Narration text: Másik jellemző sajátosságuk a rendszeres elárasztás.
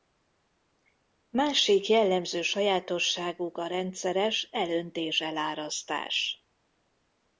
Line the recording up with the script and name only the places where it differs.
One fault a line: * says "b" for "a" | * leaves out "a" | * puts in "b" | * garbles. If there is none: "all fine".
* puts in "elöntés"